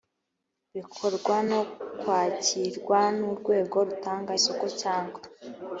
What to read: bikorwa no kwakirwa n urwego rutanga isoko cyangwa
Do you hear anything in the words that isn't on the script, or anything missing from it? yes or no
no